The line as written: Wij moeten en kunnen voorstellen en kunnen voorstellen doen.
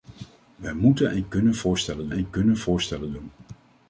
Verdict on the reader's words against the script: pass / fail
pass